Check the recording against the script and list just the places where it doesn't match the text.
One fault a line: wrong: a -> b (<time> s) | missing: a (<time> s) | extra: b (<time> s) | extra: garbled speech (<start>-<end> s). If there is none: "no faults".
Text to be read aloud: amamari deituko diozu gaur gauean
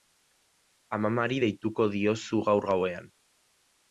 no faults